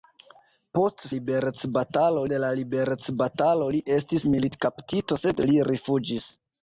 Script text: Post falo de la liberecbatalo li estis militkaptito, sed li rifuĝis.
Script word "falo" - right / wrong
wrong